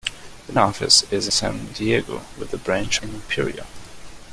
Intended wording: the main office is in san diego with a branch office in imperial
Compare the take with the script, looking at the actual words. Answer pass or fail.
fail